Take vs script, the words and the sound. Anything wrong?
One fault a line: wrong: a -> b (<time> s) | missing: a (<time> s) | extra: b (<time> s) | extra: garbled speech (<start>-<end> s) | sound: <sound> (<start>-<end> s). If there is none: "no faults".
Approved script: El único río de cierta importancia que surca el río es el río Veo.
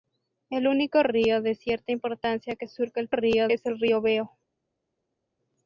no faults